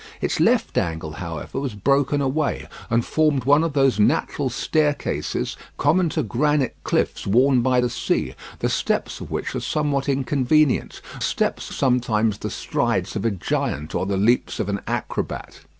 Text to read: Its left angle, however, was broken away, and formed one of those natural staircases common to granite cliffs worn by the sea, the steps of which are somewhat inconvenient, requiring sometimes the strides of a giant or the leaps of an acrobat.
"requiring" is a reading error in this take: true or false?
true